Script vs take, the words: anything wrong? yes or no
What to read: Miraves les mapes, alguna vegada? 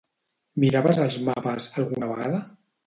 yes